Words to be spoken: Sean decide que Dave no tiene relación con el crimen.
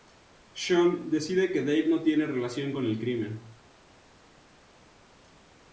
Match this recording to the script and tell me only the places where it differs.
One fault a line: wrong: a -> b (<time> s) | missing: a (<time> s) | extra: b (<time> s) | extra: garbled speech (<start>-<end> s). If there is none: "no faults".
no faults